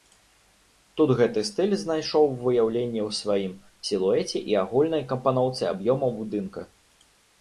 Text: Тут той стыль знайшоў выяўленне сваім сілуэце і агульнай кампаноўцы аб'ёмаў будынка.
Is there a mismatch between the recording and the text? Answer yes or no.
yes